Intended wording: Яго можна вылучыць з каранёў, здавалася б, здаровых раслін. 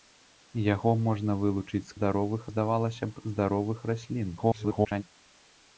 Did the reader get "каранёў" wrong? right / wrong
wrong